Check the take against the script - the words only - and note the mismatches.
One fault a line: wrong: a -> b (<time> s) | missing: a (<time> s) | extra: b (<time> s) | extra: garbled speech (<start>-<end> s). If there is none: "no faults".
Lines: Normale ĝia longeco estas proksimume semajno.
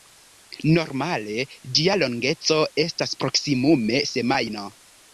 no faults